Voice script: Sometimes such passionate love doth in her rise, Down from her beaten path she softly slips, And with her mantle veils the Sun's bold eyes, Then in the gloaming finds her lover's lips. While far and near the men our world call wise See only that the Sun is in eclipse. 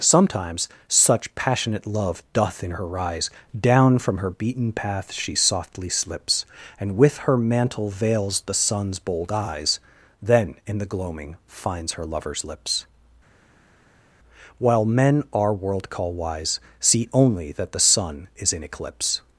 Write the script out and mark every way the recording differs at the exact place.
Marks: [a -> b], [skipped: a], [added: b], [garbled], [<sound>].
Sometimes such passionate love doth in her rise, Down from her beaten path she softly slips, And with her mantle veils the Sun's bold eyes, Then in the gloaming finds her lover's lips. While [skipped: far and near the] men our world call wise See only that the Sun is in eclipse.